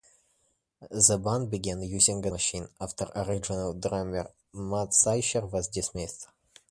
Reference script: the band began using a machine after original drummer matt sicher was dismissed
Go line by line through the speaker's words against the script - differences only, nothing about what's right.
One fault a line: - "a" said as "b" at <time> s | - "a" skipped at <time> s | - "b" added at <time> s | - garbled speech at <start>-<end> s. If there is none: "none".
none